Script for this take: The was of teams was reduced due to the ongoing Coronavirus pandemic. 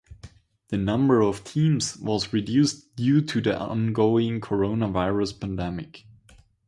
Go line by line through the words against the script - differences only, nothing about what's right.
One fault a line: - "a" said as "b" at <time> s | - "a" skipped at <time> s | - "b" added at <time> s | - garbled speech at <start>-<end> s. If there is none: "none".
- "was" said as "number" at 0.8 s